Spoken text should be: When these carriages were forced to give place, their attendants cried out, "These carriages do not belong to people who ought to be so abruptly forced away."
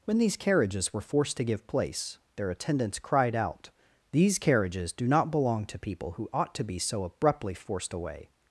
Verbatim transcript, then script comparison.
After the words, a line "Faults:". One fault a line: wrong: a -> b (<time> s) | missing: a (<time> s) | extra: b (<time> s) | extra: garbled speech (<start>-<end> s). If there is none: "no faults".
When these carriages were forced to give place, their attendants cried out, "These carriages do not belong to people who ought to be so abruptly forced away."
Faults:
no faults